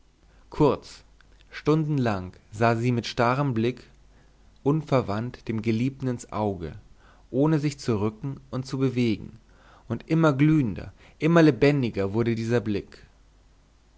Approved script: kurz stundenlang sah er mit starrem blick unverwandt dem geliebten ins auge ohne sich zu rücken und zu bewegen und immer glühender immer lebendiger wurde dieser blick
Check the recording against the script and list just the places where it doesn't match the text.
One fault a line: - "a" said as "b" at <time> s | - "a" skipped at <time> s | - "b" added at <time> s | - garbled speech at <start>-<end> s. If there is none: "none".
- "er" said as "sie" at 2.8 s